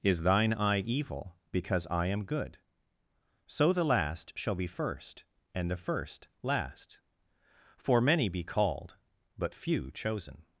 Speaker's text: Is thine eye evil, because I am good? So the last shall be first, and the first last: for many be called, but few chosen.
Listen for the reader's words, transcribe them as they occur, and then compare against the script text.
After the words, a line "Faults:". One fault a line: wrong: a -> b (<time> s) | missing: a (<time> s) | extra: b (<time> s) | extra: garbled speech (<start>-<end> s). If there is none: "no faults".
Is thine eye evil, because I am good? So the last shall be first, and the first last: for many be called, but few chosen.
Faults:
no faults